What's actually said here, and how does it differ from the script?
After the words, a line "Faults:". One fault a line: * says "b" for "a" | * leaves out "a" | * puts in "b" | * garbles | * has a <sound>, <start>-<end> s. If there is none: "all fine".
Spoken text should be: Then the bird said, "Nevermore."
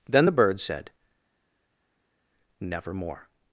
Then the bird said, "Nevermore."
Faults:
all fine